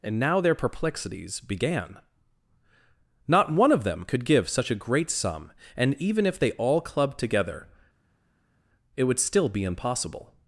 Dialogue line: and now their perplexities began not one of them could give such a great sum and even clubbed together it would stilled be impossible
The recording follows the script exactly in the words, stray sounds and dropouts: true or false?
false